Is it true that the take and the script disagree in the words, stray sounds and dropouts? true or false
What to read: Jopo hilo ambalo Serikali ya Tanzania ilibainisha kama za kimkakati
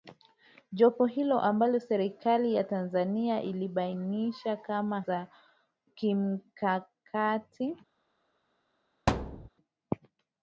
true